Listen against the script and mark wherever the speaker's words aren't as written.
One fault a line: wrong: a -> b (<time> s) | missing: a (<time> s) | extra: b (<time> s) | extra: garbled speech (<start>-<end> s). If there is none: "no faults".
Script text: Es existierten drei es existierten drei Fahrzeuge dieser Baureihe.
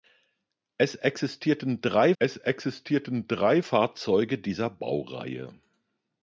no faults